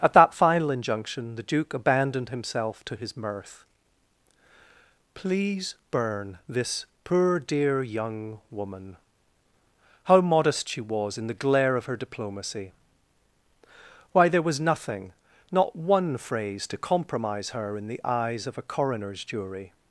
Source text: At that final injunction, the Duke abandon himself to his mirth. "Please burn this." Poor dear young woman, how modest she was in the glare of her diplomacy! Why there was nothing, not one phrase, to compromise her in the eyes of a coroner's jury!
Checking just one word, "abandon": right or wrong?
wrong